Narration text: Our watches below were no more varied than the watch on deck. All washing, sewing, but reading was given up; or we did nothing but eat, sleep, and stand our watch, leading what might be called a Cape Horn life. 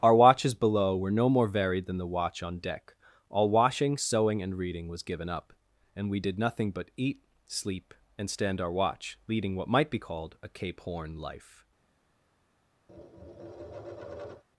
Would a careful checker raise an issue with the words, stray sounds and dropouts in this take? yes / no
yes